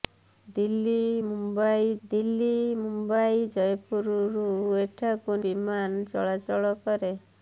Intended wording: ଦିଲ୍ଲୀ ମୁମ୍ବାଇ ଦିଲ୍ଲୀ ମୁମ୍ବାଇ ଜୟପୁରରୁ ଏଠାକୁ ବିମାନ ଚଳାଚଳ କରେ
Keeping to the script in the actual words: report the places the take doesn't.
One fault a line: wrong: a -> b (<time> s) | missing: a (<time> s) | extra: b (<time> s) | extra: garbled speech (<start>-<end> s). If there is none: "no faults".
no faults